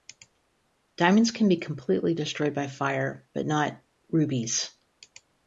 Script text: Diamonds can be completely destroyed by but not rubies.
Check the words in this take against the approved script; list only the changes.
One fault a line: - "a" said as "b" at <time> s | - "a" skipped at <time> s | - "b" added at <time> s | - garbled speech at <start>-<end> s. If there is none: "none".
- "fire" added at 2.7 s